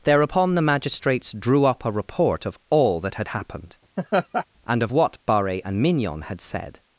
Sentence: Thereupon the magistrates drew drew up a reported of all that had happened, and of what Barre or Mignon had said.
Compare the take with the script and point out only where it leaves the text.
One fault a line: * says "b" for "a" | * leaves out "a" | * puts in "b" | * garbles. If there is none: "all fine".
* leaves out "drew"
* says "report" for "reported"
* says "and" for "or"